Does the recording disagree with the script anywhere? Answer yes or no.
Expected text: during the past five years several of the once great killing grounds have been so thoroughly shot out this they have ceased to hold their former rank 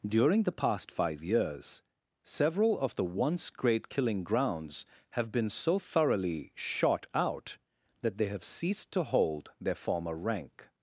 yes